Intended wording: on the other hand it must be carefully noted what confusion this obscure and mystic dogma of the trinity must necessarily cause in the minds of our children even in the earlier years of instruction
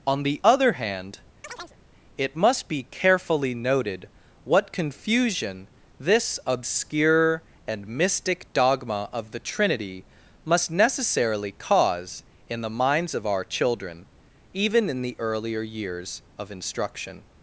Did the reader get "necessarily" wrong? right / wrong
right